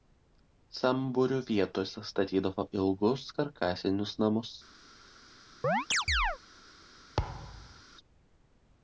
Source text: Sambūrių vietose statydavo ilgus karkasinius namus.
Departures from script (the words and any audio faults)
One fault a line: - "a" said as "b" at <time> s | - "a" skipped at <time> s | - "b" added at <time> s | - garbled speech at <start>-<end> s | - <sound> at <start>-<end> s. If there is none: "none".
- chirp at 5.6-6.4 s
- thud at 7.2-7.8 s